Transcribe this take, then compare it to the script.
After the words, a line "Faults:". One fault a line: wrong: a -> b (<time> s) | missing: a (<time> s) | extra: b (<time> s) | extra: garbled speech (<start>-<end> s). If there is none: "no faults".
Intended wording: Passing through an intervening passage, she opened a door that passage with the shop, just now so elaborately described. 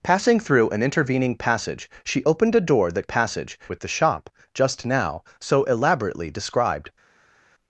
Passing through an intervening passage, she opened a door that passage with the shop, just now so elaborately described.
Faults:
no faults